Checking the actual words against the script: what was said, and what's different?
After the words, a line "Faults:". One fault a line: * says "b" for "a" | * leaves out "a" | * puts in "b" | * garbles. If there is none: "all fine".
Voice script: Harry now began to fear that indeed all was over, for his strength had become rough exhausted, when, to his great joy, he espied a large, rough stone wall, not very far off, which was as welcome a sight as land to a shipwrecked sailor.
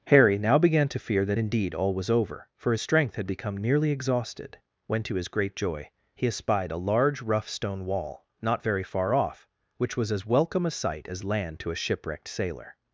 Harry now began to fear that indeed all was over, for his strength had become nearly exhausted, when, to his great joy, he espied a large, rough stone wall, not very far off, which was as welcome a sight as land to a shipwrecked sailor.
Faults:
* says "nearly" for "rough"